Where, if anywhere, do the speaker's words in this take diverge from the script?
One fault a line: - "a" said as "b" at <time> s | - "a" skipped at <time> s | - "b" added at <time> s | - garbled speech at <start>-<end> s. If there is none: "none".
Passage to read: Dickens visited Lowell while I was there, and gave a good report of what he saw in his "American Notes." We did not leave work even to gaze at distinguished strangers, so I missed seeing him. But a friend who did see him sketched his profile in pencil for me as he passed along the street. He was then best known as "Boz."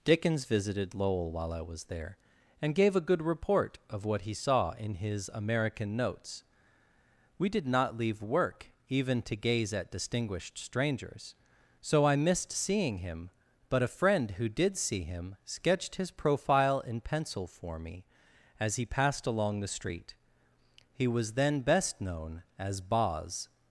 none